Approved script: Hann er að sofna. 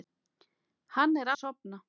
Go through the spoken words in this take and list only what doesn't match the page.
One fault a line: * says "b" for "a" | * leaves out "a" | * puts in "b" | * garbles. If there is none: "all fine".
all fine